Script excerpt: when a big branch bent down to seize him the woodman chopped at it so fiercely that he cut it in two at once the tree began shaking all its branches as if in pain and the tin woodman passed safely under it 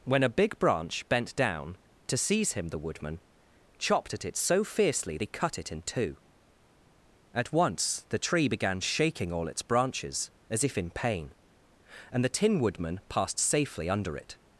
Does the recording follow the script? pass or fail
fail